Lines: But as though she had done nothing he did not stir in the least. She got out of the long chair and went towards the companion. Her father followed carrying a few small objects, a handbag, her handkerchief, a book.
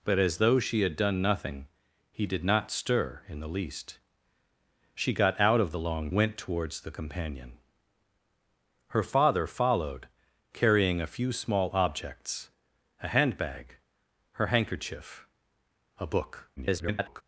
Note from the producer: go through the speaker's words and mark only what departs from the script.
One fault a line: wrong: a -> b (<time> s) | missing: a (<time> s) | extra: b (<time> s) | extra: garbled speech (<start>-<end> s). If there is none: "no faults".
missing: chair and (6.1 s)
extra: garbled speech (16.6-17.2 s)